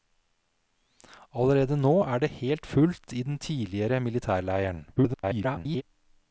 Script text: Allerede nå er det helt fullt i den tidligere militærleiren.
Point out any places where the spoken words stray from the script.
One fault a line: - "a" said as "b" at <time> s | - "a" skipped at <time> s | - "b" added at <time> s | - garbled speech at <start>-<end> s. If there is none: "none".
- garbled speech at 5.0-5.8 s